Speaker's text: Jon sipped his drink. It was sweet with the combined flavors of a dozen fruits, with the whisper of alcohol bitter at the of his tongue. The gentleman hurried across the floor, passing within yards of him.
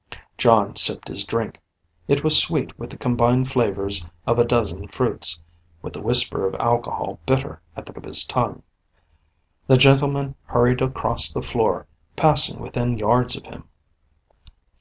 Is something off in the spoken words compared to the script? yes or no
no